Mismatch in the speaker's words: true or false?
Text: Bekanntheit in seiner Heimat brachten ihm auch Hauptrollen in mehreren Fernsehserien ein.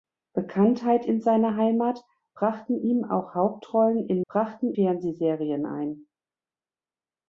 true